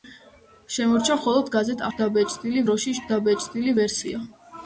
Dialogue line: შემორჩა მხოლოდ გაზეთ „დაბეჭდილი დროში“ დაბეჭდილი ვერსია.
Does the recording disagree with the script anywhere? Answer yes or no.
no